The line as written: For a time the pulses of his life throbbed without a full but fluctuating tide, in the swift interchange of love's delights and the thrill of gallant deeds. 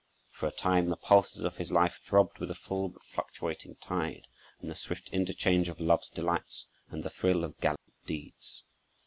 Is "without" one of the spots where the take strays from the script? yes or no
yes